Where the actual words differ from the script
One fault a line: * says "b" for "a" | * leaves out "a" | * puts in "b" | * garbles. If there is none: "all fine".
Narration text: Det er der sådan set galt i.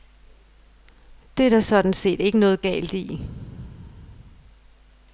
* puts in "ikke noget"